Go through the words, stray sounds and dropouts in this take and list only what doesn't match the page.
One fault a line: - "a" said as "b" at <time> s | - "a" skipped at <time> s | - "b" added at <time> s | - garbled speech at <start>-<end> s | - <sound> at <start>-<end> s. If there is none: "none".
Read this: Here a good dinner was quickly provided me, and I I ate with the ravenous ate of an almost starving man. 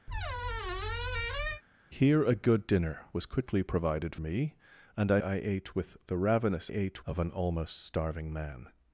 - squeak at 0.1-1.6 s